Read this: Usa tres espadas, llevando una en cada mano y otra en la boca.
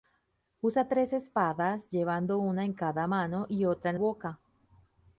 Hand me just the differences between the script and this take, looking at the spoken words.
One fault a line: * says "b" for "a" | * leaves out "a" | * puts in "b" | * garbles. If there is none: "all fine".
* leaves out "la"